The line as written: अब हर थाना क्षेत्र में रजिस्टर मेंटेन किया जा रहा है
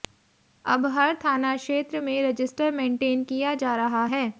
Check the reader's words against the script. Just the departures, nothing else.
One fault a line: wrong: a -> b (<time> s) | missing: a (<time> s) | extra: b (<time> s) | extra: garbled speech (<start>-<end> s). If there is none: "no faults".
no faults